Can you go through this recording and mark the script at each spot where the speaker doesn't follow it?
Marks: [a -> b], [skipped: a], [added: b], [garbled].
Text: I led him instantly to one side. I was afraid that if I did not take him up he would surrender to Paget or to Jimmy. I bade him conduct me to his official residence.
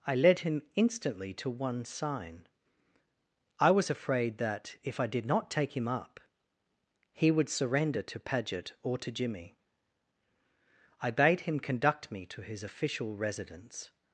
I led him instantly to one [side. -> sign] I was afraid that if I did not take him up he would surrender to Paget or to Jimmy. I bade him conduct me to his official residence.